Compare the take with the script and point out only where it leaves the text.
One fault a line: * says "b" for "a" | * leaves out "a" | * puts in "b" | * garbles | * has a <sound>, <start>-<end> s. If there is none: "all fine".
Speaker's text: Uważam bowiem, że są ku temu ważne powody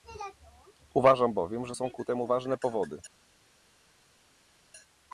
all fine